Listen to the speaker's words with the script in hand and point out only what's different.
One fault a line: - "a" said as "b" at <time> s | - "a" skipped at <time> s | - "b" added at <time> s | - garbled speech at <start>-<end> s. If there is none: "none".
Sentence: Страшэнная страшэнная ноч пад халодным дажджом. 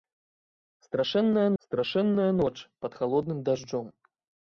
none